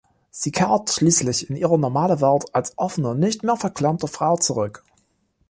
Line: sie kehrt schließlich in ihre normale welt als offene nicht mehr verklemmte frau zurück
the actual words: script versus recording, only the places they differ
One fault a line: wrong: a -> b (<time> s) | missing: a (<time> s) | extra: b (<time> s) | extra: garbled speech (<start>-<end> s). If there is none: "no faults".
no faults